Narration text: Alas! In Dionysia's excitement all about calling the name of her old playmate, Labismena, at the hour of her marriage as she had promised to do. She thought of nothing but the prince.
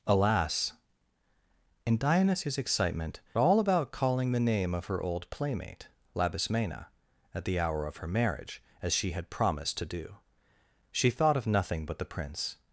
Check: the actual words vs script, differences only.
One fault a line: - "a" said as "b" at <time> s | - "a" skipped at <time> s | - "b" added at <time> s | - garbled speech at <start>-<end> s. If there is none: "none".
none